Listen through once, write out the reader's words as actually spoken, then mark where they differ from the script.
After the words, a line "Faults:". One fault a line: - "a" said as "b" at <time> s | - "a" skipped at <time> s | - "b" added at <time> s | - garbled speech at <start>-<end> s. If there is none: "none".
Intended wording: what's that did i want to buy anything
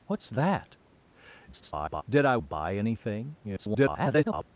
what's that [garbled] did i to buy anything [garbled]
Faults:
- garbled speech at 1.5-2.0 s
- "want" skipped at 2.4 s
- garbled speech at 3.4-4.5 s